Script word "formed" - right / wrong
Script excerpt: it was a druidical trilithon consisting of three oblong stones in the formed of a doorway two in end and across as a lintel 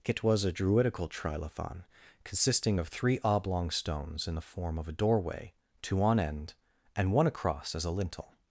wrong